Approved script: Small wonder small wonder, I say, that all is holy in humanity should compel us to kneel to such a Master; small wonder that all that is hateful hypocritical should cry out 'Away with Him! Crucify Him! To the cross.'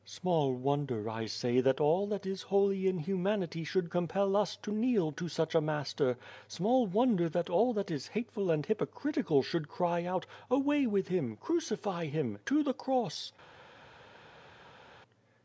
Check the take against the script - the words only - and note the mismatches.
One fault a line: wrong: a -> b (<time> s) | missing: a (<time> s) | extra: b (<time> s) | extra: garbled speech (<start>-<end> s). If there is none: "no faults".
missing: small wonder (1.1 s)
extra: that (2.1 s)
extra: and (8.5 s)